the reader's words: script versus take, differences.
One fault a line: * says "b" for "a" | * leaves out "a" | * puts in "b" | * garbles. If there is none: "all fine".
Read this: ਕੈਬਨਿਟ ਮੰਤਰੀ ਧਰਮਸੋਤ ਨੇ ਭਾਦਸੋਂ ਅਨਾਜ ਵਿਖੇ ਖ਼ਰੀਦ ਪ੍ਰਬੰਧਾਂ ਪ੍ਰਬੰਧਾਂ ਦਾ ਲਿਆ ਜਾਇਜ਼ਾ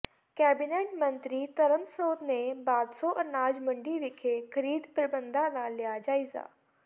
* puts in "ਮੰਡੀ"
* leaves out "ਪ੍ਰਬੰਧਾਂ"